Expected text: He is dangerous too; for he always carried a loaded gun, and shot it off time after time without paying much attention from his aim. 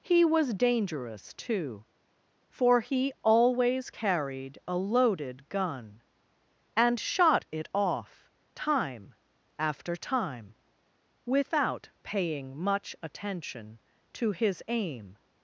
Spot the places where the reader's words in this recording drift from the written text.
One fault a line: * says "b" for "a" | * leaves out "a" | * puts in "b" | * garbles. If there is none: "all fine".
* says "was" for "is"
* says "to" for "from"